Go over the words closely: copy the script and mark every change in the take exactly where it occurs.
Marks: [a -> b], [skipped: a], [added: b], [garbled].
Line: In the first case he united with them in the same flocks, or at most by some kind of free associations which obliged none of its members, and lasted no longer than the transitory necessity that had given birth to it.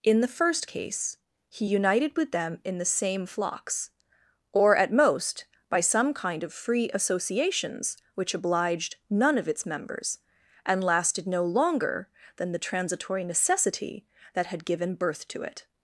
In the first case he united with them in the same flocks, or at most by some kind of free associations which obliged none of its members, and lasted no longer than the transitory necessity that had given birth to it.